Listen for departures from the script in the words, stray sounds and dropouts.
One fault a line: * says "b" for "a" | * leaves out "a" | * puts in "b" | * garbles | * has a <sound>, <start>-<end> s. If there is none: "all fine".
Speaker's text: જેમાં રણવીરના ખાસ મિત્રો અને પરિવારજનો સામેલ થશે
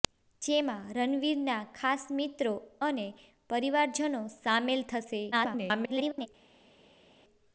* garbles